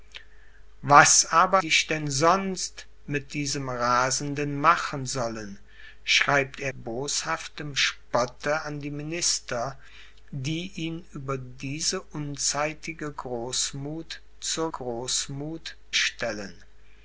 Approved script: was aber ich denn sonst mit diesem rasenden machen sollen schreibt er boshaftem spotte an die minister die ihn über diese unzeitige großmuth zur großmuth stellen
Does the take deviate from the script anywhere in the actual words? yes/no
no